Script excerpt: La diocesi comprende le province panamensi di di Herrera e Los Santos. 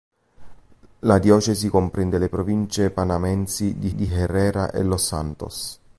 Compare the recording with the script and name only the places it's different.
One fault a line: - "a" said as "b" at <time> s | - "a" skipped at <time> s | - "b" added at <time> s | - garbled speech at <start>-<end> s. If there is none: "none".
none